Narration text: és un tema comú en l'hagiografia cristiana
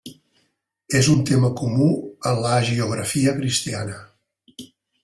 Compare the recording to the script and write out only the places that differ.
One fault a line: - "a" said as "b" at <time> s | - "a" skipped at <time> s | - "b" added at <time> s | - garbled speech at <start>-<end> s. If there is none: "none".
none